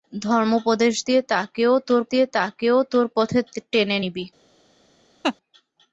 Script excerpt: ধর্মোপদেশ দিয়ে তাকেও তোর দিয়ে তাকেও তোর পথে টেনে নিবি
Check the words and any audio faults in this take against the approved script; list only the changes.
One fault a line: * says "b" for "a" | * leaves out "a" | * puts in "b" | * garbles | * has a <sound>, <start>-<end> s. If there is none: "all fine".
* has a laugh, 5.2-5.4 s